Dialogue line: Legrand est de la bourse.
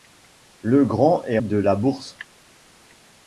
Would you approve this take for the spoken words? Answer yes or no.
yes